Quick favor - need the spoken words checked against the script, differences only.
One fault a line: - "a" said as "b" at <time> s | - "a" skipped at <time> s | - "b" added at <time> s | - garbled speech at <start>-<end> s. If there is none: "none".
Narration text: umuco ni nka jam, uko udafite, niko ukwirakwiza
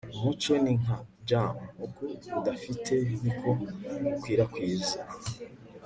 none